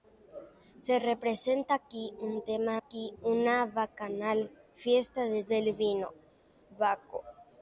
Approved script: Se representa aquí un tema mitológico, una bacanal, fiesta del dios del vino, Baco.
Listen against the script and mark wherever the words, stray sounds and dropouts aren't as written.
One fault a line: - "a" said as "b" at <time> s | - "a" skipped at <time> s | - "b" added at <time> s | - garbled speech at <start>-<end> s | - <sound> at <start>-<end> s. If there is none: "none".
- "mitológico" said as "aquí" at 2.8 s
- "dios" skipped at 5.5 s